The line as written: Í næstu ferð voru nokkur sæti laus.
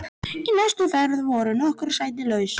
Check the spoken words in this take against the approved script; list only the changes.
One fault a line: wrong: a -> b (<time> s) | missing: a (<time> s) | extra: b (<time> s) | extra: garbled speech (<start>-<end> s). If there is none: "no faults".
no faults